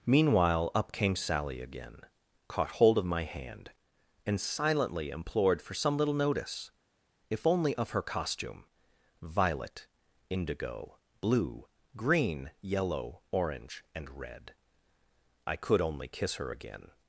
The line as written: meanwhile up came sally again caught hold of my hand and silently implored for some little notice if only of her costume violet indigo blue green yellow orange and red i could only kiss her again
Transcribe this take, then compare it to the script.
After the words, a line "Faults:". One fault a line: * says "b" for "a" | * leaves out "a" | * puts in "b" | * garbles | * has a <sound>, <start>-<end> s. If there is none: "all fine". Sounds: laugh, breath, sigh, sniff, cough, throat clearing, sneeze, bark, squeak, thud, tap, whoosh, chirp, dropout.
meanwhile up came sally again caught hold of my hand and silently implored for some little notice if only of her costume violet indigo blue green yellow orange and red i could only kiss her again
Faults:
all fine